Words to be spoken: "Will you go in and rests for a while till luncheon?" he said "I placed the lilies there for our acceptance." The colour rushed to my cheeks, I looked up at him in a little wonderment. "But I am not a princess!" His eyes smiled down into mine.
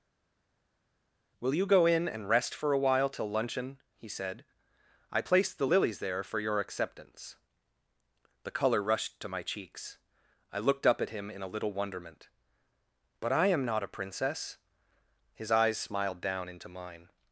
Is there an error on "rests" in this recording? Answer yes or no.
yes